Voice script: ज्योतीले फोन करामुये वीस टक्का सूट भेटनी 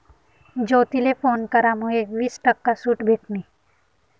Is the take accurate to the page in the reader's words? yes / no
yes